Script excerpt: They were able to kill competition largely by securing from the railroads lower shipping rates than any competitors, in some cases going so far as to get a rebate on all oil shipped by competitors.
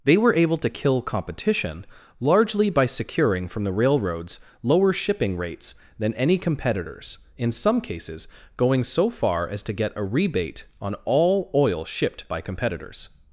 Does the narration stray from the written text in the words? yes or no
no